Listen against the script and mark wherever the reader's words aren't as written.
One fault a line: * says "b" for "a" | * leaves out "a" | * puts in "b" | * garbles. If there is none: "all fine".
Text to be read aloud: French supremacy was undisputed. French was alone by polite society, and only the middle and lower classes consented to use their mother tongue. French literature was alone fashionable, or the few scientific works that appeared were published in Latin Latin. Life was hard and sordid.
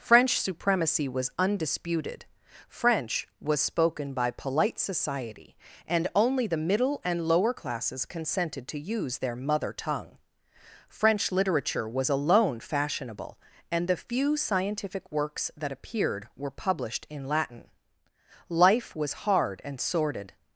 * says "spoken" for "alone"
* says "and" for "or"
* leaves out "Latin"